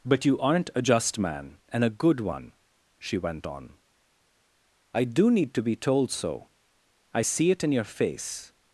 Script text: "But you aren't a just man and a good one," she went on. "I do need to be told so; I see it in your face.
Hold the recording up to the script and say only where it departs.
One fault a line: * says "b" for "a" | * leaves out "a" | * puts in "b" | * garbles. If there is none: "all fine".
all fine